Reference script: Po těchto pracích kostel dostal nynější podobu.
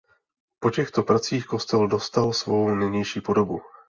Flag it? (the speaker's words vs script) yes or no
yes